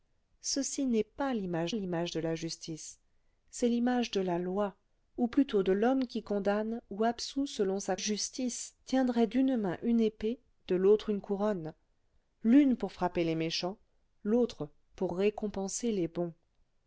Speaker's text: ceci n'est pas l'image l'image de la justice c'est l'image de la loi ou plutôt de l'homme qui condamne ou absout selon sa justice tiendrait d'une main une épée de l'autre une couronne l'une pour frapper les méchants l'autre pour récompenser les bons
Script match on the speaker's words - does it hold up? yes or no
yes